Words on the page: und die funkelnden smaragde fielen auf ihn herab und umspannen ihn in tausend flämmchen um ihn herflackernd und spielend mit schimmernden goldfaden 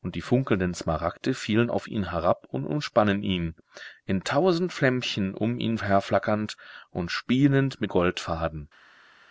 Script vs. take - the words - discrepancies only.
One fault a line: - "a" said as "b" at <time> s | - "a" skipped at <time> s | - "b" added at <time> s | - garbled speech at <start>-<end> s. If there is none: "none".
- "schimmernden" skipped at 7.9 s